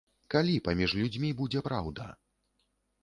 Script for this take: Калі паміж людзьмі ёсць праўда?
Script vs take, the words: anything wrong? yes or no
yes